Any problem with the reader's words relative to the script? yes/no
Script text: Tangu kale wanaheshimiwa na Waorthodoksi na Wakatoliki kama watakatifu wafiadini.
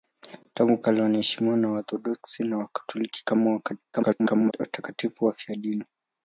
yes